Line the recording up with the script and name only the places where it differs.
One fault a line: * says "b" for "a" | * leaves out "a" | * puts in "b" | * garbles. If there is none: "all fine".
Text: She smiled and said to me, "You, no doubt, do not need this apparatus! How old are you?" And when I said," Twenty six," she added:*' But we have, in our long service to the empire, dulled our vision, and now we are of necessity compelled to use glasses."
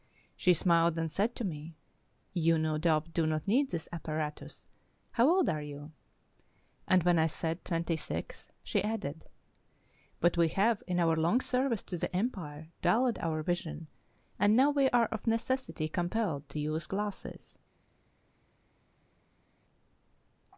all fine